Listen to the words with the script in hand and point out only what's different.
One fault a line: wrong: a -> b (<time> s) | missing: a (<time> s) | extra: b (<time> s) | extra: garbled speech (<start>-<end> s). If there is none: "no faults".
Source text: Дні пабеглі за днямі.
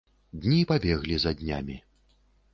no faults